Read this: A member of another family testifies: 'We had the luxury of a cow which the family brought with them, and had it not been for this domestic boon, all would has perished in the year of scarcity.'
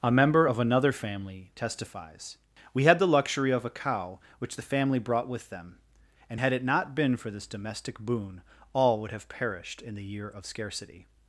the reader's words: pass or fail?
fail